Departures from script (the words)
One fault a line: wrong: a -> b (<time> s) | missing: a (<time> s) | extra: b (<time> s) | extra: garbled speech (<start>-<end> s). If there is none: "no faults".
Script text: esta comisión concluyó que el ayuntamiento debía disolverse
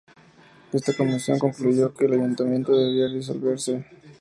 no faults